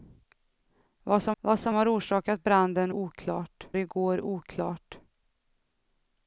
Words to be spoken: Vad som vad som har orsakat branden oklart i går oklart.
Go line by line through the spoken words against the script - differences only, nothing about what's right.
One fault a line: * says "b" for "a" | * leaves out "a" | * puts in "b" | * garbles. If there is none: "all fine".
all fine